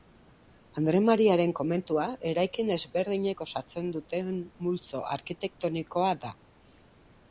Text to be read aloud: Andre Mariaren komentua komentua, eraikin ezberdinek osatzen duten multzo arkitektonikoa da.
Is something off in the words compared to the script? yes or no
yes